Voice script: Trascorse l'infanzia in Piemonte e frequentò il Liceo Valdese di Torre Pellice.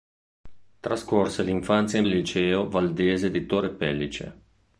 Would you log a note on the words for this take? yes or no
yes